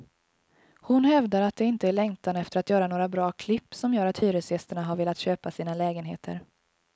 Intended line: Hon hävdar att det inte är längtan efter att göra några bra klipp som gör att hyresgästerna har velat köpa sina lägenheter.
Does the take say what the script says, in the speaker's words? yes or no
yes